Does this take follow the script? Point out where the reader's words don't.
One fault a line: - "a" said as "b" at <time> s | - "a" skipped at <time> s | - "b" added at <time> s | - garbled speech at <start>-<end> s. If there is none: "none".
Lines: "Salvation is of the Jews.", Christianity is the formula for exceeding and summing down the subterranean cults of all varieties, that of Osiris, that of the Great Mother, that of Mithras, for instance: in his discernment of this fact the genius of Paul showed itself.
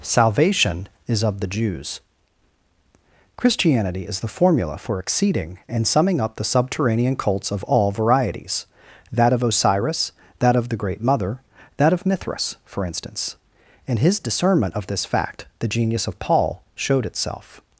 - "down" said as "up" at 6.2 s